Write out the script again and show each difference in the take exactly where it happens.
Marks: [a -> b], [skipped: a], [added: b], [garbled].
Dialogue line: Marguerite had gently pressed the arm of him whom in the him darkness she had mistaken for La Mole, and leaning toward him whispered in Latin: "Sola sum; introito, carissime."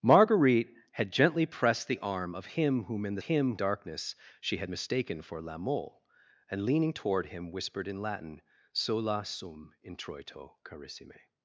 Marguerite had gently pressed the arm of him whom in the him darkness she had mistaken for La Mole, and leaning toward him whispered in Latin: "Sola sum; introito, carissime."